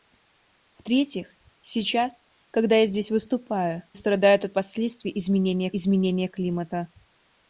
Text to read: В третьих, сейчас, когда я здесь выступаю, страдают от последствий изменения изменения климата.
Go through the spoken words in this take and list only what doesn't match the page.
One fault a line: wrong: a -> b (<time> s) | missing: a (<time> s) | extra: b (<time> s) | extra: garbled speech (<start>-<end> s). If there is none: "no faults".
no faults